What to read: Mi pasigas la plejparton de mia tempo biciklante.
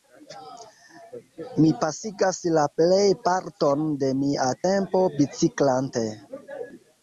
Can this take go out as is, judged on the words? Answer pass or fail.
pass